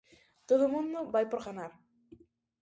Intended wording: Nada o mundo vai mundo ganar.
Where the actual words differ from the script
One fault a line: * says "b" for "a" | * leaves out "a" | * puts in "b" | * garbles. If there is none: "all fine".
* says "Todo" for "Nada"
* says "por" for "mundo"